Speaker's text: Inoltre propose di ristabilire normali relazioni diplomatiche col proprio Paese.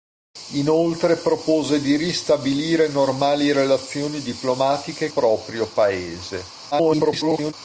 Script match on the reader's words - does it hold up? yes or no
no